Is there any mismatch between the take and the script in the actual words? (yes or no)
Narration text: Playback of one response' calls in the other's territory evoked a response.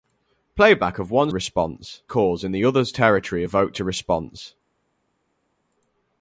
no